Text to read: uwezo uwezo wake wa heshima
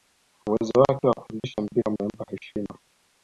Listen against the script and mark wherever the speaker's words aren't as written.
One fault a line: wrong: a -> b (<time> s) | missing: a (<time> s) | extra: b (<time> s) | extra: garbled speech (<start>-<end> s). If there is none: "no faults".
missing: uwezo (0.7 s)
extra: kufundisha mpira umempa (1.1 s)